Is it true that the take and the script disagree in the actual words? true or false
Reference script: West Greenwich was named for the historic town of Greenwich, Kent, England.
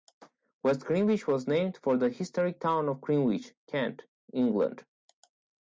false